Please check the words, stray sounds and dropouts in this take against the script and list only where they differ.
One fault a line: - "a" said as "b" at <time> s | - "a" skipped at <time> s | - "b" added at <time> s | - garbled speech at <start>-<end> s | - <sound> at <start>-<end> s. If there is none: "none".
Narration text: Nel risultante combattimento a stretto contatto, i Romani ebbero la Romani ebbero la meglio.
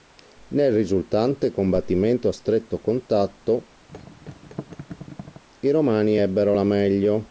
- thud at 3.9-5.4 s
- "Romani ebbero la" skipped at 6.6 s